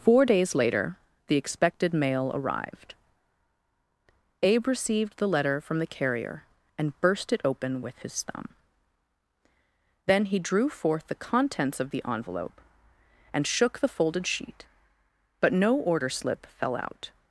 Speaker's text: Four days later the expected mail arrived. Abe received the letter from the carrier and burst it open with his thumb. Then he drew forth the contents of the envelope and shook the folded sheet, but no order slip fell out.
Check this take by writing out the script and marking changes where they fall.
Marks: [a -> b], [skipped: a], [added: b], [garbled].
Four days later the expected mail arrived. Abe received the letter from the carrier and burst it open with his thumb. Then he drew forth the contents of the envelope and shook the folded sheet, but no order slip fell out.